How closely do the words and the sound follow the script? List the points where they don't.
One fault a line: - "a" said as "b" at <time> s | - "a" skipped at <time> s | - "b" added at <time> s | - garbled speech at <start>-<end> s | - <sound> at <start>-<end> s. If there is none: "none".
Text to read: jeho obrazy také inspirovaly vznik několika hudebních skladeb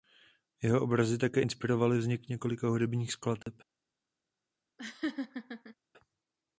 - dropout at 3.4-3.5 s
- laugh at 4.8-5.8 s